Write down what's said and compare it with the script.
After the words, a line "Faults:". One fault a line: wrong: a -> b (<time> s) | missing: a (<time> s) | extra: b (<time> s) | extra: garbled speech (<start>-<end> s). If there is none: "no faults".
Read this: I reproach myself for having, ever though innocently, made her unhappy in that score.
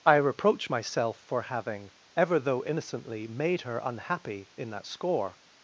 I reproach myself for having, ever though innocently, made her unhappy in that score.
Faults:
no faults